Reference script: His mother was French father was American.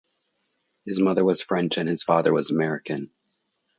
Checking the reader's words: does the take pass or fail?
fail